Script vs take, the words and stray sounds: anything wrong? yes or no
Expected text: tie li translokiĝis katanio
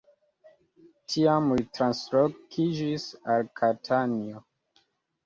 yes